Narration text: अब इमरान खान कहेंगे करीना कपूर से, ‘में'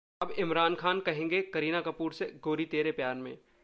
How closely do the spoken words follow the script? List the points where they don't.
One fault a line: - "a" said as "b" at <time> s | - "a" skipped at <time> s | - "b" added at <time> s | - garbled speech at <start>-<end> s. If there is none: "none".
- "गोरी तेरे प्यार" added at 2.4 s